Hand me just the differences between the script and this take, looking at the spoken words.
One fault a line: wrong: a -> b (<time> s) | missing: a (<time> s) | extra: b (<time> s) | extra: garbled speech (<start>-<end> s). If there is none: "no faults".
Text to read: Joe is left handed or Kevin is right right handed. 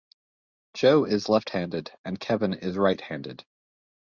wrong: or -> and (2.0 s)
missing: right (3.0 s)